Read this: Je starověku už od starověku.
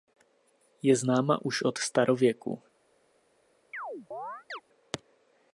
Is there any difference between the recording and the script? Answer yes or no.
yes